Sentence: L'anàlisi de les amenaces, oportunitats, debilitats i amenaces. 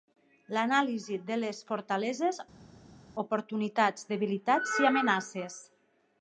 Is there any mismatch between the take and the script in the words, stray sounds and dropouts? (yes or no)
yes